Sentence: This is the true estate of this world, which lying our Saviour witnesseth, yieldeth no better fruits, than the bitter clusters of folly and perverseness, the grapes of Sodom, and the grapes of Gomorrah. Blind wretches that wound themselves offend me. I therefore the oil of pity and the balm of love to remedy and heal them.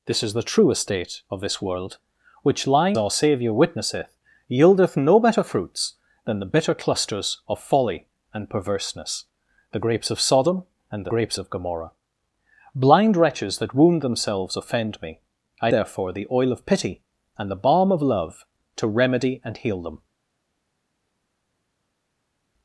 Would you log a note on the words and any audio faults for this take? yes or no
no